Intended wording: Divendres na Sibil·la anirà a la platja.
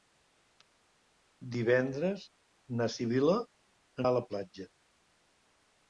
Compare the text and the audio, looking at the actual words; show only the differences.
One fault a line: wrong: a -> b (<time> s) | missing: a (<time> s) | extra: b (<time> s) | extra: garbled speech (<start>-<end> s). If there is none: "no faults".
missing: anirà (3.4 s)